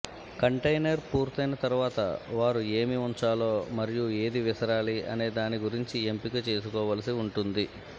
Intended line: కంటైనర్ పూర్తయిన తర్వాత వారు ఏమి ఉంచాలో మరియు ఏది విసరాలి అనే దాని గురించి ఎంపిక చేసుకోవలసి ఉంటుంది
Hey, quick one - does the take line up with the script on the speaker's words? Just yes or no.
yes